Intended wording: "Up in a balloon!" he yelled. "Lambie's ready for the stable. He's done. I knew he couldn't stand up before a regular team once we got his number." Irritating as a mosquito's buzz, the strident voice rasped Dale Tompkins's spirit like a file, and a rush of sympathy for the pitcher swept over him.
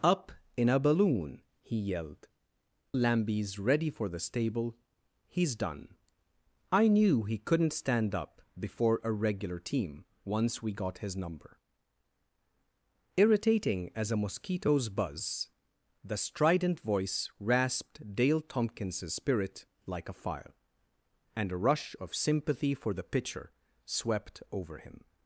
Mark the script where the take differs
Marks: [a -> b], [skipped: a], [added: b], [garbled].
"Up in a balloon!" he yelled. "Lambie's ready for the stable. He's done. I knew he couldn't stand up before a regular team once we got his number." Irritating as a mosquito's buzz, the strident voice rasped Dale Tompkins's spirit like a file, and a rush of sympathy for the pitcher swept over him.